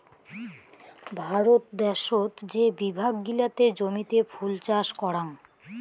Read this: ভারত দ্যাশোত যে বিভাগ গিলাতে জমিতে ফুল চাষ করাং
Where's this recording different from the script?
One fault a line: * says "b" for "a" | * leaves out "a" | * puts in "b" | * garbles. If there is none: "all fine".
all fine